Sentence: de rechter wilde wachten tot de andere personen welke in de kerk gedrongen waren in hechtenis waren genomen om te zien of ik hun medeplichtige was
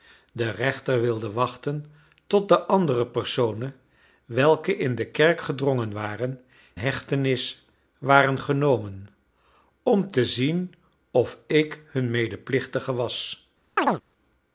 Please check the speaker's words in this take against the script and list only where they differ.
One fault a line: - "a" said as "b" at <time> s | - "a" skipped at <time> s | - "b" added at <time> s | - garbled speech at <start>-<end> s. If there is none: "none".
- "in" skipped at 6.4 s